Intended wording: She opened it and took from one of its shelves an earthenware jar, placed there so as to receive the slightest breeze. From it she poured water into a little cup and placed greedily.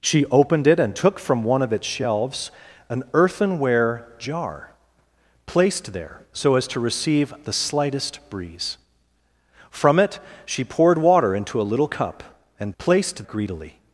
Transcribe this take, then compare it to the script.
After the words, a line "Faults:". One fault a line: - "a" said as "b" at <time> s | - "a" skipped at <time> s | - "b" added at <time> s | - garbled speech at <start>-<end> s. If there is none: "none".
She opened it and took from one of its shelves an earthenware jar, placed there so as to receive the slightest breeze. From it she poured water into a little cup and placed greedily.
Faults:
none